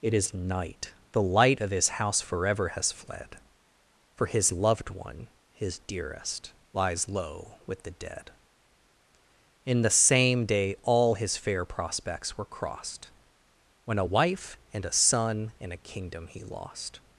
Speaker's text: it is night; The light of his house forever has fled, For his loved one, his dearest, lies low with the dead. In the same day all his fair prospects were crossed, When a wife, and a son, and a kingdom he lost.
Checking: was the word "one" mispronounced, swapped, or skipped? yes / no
no